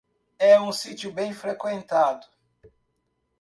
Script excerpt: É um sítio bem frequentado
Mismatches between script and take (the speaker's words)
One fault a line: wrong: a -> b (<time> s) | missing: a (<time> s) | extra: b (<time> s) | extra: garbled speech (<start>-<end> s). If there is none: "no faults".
no faults